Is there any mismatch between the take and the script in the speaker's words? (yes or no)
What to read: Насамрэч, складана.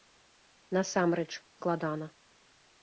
no